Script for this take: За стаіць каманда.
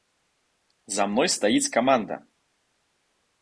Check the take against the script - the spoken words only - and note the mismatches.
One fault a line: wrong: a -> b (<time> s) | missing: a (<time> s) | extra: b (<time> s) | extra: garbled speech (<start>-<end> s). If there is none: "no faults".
extra: мной (1.1 s)